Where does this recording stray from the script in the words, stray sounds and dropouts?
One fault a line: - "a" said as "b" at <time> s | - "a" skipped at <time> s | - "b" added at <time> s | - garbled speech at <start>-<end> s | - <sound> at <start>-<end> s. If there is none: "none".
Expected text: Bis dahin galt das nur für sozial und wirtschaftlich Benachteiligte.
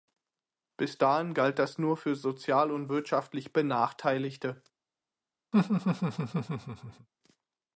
- laugh at 5.5-7.1 s